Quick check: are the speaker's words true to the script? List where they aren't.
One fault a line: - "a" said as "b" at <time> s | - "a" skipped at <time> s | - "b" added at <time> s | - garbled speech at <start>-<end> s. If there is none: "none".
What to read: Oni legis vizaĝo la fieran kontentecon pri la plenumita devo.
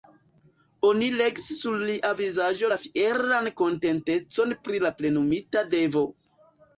- "sur lia" added at 1.6 s